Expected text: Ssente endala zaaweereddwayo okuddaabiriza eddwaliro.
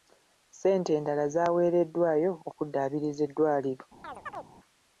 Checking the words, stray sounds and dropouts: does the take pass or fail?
fail